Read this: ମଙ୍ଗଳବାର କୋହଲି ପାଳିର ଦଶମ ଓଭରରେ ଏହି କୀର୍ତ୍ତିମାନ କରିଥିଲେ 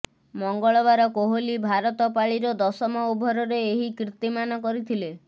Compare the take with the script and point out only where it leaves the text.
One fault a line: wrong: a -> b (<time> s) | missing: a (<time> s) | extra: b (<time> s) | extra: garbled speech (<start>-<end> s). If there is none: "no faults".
extra: ଭାରତ (1.7 s)